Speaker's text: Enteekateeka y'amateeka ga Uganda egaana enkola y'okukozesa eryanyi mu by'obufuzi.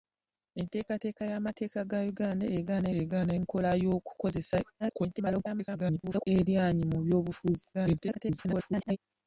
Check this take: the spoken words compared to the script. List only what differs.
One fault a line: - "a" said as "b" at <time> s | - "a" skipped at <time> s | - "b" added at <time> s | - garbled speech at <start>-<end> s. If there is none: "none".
- "egaana" added at 3.0 s
- garbled speech at 4.8-6.3 s
- garbled speech at 7.7-9.0 s